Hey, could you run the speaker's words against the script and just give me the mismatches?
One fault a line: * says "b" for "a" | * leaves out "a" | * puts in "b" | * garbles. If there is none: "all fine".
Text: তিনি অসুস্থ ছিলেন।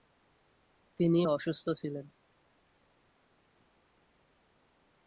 all fine